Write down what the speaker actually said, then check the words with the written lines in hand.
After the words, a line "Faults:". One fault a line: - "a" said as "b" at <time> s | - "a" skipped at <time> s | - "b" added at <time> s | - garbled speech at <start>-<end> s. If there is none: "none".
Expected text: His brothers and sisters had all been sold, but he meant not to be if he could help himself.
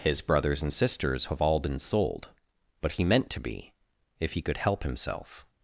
His brothers and sisters have all been sold, but he meant to be if he could help himself.
Faults:
- "had" said as "have" at 1.3 s
- "not" skipped at 3.3 s